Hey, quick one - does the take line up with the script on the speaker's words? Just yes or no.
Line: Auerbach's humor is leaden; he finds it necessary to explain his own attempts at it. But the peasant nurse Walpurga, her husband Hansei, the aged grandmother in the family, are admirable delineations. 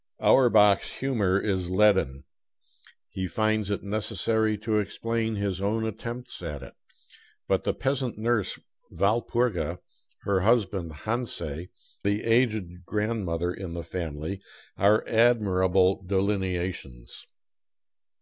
yes